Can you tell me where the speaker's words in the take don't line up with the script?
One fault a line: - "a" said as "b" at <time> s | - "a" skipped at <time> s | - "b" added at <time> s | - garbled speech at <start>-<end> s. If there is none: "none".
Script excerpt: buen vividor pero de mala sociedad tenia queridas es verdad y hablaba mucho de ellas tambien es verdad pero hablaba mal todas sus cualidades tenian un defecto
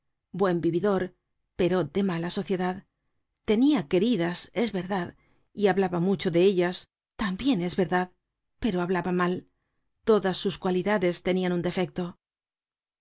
none